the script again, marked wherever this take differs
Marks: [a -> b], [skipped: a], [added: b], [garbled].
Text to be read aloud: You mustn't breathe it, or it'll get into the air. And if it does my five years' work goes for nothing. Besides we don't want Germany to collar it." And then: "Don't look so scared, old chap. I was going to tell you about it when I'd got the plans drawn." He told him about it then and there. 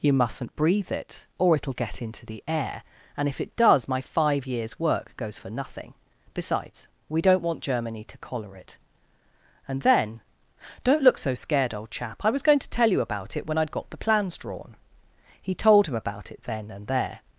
You mustn't breathe it, or it'll get into the air. And if it does my five years' work goes for nothing. Besides we don't want Germany to collar it." And then: "Don't look so scared, old chap. I was going to tell you about it when I'd got the plans drawn." He told him about it then and there.